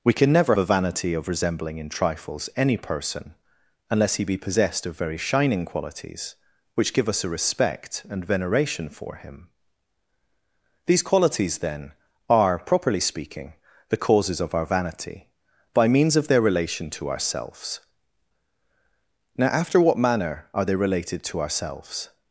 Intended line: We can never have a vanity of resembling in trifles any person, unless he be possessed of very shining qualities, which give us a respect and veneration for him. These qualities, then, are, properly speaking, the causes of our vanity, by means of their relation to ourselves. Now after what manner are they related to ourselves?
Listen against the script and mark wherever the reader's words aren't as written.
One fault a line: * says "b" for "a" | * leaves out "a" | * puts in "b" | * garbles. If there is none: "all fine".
* leaves out "have"